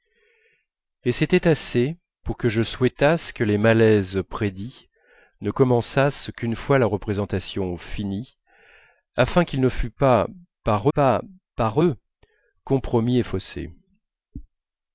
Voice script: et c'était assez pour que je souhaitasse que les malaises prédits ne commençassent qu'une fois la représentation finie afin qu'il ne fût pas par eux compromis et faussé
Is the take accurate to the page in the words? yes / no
no